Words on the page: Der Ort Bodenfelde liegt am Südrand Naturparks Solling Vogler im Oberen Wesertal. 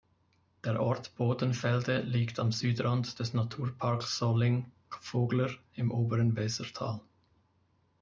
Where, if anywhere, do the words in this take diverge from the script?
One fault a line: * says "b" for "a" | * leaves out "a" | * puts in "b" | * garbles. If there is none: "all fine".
* puts in "des"